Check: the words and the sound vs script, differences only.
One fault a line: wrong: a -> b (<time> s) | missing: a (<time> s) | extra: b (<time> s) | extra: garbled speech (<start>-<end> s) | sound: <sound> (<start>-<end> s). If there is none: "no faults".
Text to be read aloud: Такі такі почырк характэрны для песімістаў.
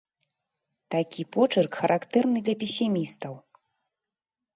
missing: такі (1.2 s)